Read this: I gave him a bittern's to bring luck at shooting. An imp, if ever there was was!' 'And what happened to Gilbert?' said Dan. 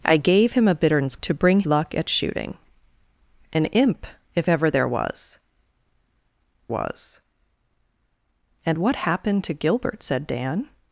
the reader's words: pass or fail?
pass